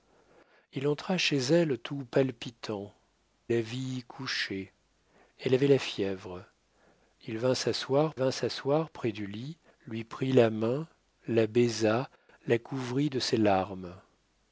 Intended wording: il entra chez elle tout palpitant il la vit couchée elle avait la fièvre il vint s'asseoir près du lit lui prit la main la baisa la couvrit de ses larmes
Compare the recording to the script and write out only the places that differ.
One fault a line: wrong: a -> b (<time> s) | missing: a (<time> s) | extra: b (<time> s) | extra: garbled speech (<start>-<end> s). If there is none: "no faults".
missing: il (2.9 s)
extra: vint s'asseoir (8.1 s)